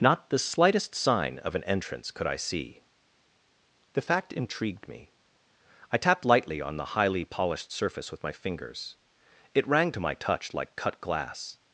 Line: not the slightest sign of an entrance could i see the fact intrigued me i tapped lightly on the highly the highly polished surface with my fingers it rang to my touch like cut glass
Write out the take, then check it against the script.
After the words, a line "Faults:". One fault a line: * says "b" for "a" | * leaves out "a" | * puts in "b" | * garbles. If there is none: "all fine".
not the slightest sign of an entrance could i see the fact intrigued me i tapped lightly on the highly polished surface with my fingers it rang to my touch like cut glass
Faults:
* leaves out "the highly"